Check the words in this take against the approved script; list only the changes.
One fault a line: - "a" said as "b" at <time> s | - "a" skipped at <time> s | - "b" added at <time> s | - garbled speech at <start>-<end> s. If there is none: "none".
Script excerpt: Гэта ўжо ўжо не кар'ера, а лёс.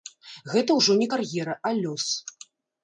- "ўжо" skipped at 1.0 s